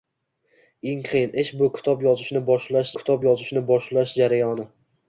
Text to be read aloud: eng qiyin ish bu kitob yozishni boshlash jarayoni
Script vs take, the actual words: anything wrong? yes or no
yes